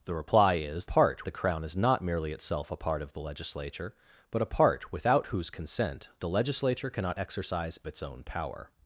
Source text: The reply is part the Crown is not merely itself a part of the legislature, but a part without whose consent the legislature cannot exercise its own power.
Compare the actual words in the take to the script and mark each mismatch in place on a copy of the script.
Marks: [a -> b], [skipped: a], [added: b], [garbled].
The reply is part the Crown is not merely itself a part of the legislature, but a part without whose consent the legislature cannot exercise its own power.